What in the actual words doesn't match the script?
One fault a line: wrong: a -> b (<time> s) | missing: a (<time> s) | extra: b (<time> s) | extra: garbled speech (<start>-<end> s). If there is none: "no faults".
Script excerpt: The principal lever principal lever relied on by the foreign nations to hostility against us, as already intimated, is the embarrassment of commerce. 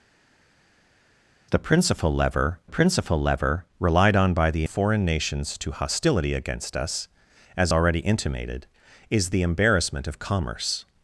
no faults